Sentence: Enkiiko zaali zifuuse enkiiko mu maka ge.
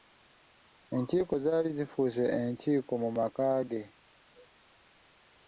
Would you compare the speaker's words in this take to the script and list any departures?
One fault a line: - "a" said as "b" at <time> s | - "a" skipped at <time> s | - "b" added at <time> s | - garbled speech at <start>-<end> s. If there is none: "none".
none